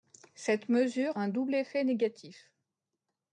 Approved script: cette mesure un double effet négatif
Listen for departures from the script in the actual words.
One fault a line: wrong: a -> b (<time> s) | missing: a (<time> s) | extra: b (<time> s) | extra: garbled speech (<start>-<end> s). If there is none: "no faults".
no faults